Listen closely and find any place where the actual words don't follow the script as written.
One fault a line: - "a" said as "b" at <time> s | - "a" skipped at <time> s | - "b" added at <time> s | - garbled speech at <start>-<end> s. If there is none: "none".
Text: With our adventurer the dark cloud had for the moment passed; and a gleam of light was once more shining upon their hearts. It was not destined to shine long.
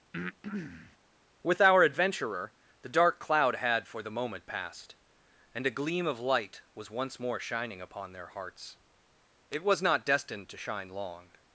none